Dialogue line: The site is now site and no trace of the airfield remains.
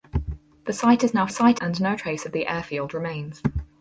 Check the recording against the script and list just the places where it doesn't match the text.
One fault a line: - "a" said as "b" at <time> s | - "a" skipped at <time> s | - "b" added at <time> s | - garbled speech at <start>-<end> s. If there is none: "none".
none